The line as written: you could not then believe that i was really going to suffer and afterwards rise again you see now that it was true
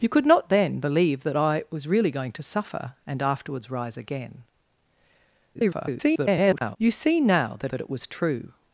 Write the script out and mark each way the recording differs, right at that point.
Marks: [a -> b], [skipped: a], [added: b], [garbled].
you could not then believe that i was really going to suffer and afterwards rise again [garbled] you see now that [added: that] it was true